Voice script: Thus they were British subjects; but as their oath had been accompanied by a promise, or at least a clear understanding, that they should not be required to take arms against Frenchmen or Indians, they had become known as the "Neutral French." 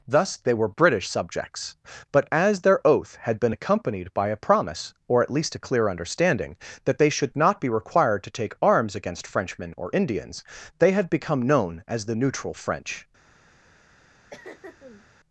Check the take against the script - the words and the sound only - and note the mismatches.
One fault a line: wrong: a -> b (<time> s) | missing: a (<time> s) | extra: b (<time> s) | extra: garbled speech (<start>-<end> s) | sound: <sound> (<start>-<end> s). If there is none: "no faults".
sound: throat clearing (14.3-15.1 s)